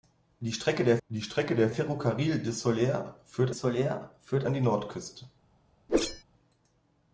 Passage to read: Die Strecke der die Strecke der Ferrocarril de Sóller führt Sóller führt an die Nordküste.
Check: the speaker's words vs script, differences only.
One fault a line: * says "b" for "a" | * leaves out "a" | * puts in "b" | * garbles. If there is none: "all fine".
all fine